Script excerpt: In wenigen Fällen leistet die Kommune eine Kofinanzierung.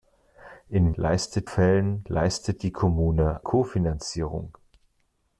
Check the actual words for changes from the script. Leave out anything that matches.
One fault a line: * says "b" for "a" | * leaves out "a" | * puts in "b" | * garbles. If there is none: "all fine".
* says "leistet" for "wenigen"
* leaves out "eine"